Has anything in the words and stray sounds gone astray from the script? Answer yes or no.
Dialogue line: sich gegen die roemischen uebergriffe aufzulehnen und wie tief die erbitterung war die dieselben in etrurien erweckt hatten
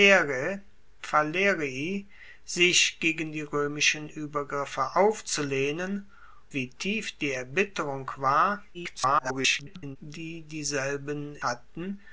yes